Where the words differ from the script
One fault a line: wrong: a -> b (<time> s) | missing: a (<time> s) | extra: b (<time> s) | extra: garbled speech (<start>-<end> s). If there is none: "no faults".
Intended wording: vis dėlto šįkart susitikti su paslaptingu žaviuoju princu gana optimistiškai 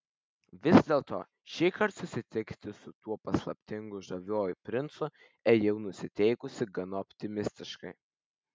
extra: tuo (3.0 s)
extra: ėjau nusiteikusi (5.5 s)